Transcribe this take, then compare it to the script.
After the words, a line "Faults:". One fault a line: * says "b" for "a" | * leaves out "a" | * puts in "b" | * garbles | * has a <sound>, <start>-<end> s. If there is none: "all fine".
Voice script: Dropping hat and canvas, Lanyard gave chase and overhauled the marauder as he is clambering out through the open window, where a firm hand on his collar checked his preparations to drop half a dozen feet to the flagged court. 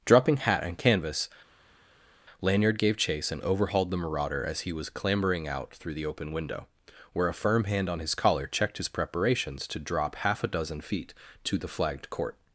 Dropping hat and canvas, Lanyard gave chase and overhauled the marauder as he was clambering out through the open window, where a firm hand on his collar checked his preparations to drop half a dozen feet to the flagged court.
Faults:
* says "was" for "is"